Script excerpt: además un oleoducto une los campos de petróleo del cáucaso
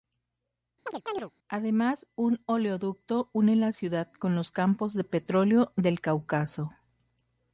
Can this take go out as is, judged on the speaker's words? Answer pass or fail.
fail